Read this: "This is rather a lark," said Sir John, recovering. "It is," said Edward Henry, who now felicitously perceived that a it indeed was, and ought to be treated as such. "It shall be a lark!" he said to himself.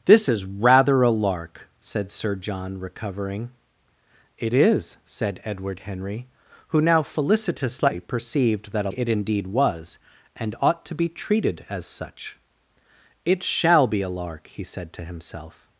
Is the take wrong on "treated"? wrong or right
right